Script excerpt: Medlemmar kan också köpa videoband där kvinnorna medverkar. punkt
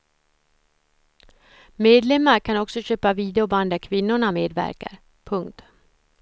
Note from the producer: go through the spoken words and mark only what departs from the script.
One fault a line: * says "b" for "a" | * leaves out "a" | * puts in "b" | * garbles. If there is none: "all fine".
all fine